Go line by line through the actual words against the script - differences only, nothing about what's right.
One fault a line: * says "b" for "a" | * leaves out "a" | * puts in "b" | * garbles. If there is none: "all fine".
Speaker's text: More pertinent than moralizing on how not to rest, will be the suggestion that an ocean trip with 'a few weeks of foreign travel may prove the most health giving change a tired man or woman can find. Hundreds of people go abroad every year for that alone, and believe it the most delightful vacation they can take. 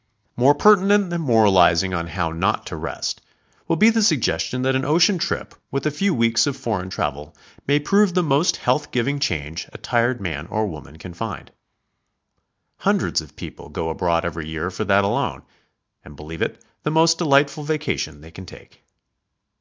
all fine